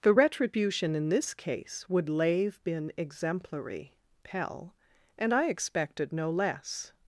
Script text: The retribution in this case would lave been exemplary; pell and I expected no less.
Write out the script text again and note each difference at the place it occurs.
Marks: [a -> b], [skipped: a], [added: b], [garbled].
The retribution in this case would lave been exemplary; pell and I expected no less.